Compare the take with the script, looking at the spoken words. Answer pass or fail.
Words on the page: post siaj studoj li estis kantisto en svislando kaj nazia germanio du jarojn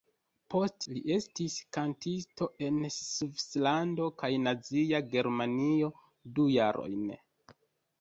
fail